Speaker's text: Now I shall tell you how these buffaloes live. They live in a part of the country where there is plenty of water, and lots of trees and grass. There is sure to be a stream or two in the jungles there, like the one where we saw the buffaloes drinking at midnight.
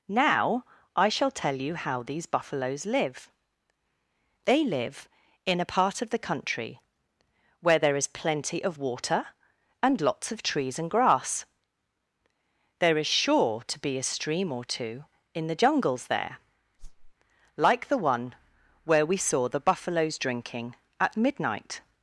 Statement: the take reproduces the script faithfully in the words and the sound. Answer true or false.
false